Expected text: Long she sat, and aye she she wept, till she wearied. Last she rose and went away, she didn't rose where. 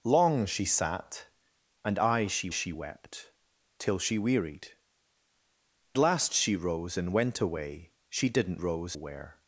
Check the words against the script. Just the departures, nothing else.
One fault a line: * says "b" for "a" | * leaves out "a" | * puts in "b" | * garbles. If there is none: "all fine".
all fine